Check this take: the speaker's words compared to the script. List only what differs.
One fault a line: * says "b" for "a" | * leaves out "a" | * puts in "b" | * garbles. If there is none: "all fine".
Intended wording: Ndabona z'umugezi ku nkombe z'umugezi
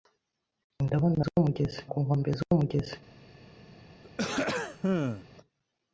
all fine